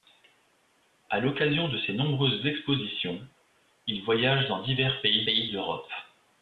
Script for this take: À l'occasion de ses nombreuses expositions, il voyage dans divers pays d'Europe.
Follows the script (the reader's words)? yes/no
no